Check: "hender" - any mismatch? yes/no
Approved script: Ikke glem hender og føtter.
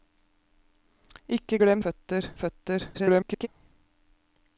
yes